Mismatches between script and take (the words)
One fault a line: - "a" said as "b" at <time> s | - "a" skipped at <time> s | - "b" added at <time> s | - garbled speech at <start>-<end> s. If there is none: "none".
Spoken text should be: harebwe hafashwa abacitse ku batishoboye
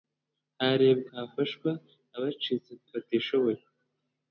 none